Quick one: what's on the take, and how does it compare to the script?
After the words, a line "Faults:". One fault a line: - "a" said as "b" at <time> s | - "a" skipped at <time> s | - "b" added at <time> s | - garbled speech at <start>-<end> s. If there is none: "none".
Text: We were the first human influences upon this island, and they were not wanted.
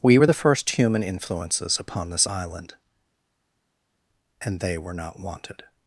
We were the first human influences upon this island, and they were not wanted.
Faults:
none